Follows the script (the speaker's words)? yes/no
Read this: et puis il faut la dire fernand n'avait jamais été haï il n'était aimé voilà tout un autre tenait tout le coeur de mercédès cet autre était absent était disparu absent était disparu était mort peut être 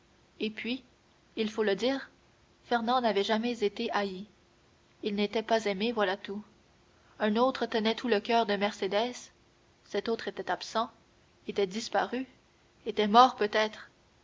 no